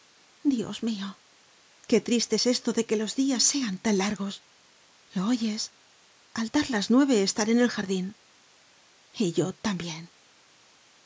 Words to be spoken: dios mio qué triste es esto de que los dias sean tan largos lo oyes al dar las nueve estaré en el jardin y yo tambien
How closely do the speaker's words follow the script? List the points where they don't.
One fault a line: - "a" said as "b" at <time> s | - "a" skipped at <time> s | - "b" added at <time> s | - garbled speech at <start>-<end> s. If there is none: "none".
none